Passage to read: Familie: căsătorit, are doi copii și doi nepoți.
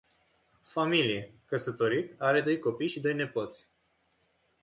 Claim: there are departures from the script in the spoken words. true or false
false